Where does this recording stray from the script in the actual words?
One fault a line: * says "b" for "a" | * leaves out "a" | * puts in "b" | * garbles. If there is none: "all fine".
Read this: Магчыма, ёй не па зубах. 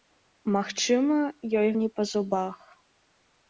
all fine